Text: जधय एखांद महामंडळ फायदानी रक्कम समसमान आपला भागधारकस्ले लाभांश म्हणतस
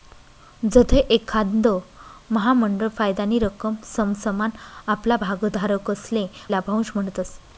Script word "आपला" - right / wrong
right